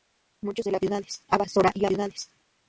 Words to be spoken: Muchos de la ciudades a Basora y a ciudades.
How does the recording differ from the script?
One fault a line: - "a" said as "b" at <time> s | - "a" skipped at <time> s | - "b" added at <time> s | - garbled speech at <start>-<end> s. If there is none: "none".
none